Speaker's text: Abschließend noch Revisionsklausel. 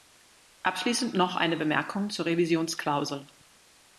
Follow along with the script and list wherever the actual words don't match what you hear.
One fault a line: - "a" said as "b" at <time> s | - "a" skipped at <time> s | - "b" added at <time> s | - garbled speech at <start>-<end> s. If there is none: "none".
- "eine Bemerkung zur" added at 1.4 s